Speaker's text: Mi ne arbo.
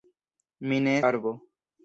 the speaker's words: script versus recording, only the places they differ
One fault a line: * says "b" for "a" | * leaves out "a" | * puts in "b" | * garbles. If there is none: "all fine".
all fine